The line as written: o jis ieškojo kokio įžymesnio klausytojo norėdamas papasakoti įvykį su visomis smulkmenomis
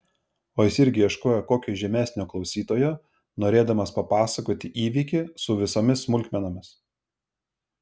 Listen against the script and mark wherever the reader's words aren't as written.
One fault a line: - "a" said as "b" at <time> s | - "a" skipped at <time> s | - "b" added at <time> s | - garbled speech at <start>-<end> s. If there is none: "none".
- "irgi" added at 0.8 s